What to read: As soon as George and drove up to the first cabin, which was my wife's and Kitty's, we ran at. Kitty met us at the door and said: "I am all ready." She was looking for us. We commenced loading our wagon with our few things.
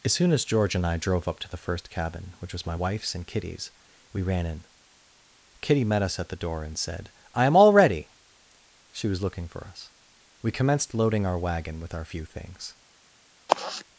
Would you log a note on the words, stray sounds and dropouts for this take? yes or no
yes